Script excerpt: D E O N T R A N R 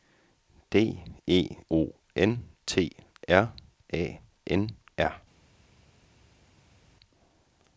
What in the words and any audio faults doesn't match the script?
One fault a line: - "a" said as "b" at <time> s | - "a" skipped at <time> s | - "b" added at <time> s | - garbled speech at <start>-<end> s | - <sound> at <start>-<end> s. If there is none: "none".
none